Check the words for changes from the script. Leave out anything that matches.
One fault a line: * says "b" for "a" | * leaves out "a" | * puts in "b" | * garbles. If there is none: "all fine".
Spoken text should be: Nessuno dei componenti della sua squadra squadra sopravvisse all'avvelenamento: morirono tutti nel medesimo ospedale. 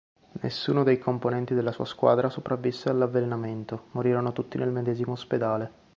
* leaves out "squadra"